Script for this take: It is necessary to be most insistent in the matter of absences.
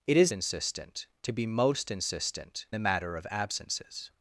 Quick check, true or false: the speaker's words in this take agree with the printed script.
false